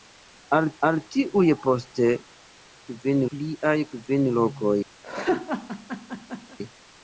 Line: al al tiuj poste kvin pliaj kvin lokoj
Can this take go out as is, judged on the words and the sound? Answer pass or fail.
fail